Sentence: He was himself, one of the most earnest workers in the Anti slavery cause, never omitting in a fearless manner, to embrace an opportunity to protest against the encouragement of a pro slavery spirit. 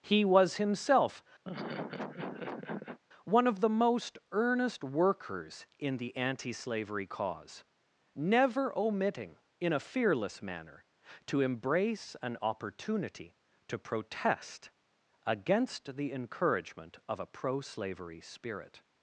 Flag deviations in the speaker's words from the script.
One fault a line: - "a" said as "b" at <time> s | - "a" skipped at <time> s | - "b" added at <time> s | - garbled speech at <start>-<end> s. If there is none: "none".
none